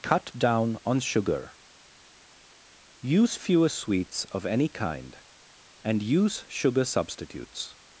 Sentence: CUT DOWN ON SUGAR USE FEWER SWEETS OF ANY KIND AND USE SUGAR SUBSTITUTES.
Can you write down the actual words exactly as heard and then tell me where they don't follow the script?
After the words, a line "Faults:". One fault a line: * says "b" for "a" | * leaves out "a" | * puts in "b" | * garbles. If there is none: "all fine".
CUT DOWN ON SUGAR USE FEWER SWEETS OF ANY KIND AND USE SUGAR SUBSTITUTES.
Faults:
all fine